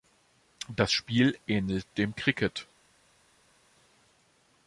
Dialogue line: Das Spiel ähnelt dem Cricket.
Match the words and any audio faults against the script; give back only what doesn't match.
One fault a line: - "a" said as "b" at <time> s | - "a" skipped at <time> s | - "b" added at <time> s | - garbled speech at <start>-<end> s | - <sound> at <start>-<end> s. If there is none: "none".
none